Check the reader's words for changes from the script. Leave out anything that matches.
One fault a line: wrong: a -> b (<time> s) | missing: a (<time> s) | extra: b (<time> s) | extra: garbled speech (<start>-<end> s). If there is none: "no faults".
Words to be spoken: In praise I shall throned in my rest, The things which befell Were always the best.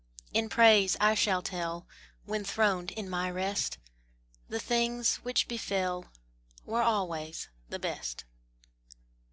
extra: tell When (1.4 s)